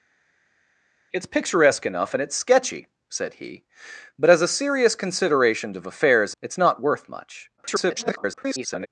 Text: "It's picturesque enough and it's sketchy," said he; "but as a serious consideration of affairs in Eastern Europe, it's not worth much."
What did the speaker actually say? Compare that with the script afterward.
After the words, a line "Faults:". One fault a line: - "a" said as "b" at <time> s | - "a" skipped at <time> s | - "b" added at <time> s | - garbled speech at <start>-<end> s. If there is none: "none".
"It's picturesque enough and it's sketchy," said he; "but as a serious consideration of affairs it's not worth much." [garbled]
Faults:
- "in Eastern Europe" skipped at 6.4 s
- garbled speech at 7.6-8.9 s